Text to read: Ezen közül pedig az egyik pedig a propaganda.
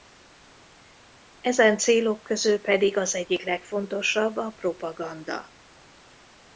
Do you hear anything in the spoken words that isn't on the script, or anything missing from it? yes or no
yes